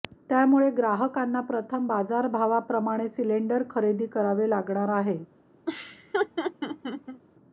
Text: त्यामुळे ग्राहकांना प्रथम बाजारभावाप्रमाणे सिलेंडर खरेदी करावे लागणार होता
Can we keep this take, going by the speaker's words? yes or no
no